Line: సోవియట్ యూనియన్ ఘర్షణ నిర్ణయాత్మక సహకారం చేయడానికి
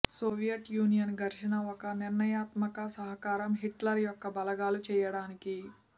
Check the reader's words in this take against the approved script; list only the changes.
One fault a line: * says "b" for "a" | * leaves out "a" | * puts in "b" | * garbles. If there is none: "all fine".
* puts in "ఒక"
* puts in "హిట్లర్ యొక్క బలగాలు"